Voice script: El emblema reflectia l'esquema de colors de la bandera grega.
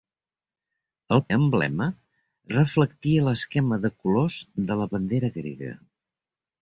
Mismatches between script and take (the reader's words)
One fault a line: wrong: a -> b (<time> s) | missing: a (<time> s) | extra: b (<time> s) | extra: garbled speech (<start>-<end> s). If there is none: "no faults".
no faults